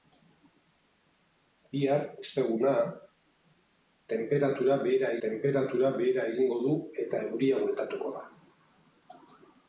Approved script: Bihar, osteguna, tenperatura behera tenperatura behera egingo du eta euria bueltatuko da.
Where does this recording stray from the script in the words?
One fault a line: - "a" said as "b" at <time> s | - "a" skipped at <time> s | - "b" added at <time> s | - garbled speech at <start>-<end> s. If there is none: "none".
none